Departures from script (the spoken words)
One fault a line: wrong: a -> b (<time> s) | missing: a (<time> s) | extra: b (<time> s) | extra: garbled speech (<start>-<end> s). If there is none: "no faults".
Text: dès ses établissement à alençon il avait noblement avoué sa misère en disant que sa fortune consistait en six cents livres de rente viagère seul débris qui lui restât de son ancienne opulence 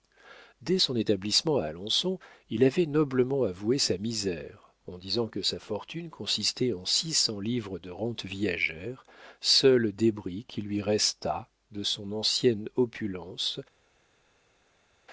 wrong: ses -> son (0.8 s)